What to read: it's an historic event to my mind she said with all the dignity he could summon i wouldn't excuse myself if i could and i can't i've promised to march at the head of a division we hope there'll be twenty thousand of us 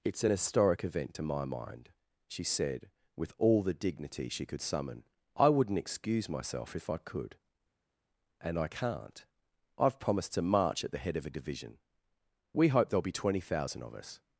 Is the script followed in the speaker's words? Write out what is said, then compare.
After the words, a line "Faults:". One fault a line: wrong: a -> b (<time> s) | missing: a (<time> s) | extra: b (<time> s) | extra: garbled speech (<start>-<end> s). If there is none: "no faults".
it's an historic event to my mind she said with all the dignity she could summon i wouldn't excuse myself if i could and i can't i've promised to march at the head of a division we hope there'll be twenty thousand of us
Faults:
wrong: he -> she (4.3 s)